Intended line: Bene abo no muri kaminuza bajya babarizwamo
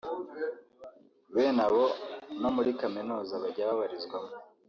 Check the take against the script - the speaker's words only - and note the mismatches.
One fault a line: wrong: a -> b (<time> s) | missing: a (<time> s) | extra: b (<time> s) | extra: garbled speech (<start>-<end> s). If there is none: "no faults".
no faults